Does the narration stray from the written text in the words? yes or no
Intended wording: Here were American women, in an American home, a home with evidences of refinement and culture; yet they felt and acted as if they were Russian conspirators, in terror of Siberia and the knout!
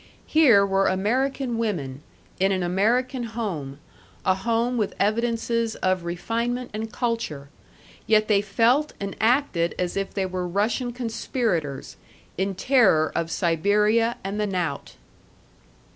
no